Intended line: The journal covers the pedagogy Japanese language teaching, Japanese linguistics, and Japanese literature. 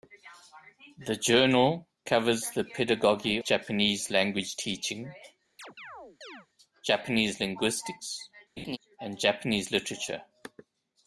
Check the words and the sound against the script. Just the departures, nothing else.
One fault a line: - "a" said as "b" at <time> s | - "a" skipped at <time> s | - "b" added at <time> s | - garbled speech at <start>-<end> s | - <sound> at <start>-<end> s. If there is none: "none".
- chirp at 5.6-6.5 s
- laugh at 8.6-8.8 s